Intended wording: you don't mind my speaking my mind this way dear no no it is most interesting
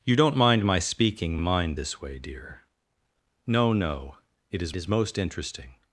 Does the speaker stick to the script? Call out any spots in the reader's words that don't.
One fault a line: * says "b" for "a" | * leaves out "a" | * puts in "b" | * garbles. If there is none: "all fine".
* leaves out "my"
* puts in "is"